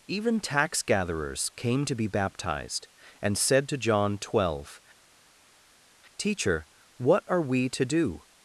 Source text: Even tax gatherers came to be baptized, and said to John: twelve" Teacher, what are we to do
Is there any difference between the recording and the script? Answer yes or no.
no